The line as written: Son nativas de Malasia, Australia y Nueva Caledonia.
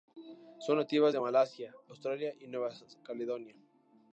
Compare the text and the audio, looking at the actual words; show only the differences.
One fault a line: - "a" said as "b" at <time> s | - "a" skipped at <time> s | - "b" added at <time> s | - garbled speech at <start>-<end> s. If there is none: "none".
none